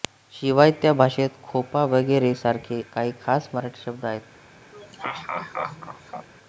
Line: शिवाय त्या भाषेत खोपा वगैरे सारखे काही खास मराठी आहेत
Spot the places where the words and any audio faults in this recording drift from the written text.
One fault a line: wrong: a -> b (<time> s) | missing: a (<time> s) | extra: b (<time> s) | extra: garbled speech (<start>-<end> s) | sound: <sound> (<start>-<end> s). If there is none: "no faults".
extra: शब्द (3.8 s)
sound: laugh (4.7-6.3 s)